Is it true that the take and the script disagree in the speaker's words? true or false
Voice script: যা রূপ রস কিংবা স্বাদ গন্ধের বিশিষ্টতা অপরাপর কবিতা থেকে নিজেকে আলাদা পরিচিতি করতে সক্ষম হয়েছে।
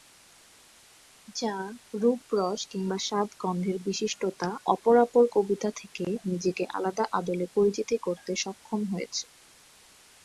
true